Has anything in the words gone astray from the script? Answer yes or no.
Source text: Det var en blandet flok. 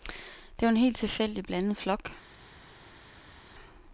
yes